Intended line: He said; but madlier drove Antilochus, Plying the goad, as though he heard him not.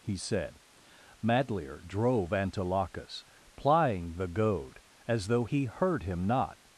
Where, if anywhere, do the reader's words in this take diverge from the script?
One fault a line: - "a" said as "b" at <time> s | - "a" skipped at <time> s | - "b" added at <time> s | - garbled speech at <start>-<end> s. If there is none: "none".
- "but" skipped at 0.6 s